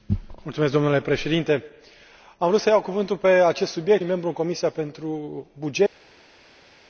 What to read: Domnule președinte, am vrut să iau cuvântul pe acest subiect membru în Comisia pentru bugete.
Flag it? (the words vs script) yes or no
no